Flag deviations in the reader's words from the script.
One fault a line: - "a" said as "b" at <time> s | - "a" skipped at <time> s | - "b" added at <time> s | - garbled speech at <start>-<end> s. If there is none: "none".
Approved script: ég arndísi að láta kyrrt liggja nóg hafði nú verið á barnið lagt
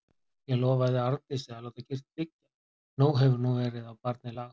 - "lofaði" added at 0.6 s
- "hafði" said as "hefur" at 3.2 s